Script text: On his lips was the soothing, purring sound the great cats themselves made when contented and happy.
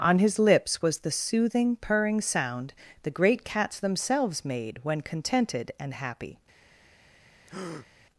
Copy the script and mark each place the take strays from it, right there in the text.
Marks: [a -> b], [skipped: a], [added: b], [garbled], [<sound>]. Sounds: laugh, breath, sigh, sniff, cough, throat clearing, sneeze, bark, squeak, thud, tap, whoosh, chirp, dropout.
On his lips was the soothing, purring sound the great cats themselves made when contented and happy. [breath]